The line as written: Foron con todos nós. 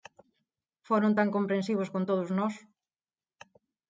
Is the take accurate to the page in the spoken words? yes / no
no